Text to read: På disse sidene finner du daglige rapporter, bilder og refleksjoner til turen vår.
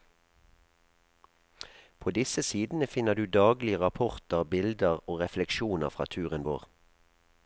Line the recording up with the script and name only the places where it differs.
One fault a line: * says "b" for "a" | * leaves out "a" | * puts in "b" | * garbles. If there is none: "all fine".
* says "fra" for "til"